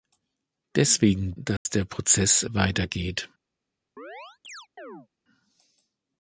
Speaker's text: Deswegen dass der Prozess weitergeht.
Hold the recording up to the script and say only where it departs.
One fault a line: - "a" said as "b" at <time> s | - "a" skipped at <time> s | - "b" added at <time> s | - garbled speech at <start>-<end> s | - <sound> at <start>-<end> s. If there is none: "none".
- dropout at 1.6-1.7 s
- chirp at 4.0-5.1 s